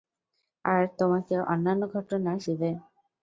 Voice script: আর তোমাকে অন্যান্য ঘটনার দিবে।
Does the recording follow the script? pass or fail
pass